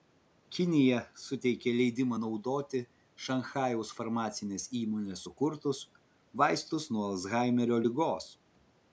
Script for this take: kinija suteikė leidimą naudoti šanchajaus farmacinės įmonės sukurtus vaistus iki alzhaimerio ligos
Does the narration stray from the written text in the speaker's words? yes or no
yes